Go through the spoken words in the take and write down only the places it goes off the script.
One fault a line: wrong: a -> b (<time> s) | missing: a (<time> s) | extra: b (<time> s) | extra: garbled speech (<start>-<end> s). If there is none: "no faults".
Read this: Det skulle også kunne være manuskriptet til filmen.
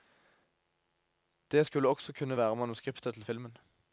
no faults